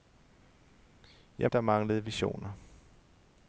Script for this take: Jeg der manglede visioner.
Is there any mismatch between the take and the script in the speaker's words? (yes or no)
no